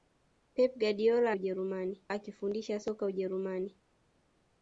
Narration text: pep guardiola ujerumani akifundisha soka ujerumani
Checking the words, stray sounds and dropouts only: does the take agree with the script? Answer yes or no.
yes